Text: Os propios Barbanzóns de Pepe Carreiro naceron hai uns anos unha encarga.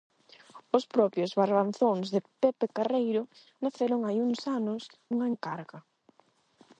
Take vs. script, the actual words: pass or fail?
pass